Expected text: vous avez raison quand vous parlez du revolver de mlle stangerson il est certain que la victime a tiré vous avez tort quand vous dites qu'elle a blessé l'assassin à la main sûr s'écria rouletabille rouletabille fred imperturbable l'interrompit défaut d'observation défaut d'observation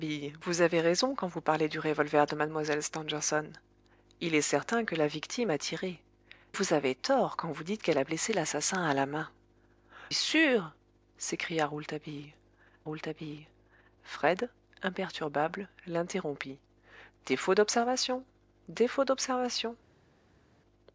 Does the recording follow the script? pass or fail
pass